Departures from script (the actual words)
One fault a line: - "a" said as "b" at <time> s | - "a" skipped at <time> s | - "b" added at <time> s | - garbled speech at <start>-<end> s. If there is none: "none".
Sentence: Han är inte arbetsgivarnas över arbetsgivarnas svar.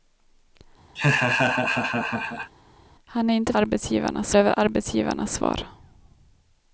none